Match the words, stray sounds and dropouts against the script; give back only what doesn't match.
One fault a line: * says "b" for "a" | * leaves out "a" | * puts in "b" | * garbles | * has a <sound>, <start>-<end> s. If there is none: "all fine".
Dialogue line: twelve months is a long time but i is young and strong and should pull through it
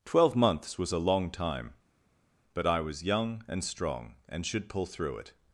* says "was" for "is"
* says "was" for "is"